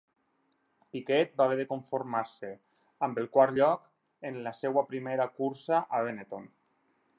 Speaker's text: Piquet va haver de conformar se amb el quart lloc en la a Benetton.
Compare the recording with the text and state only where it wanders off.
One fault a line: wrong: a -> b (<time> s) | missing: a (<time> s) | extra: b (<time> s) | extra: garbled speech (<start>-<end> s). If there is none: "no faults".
extra: seva primera cursa (4.6 s)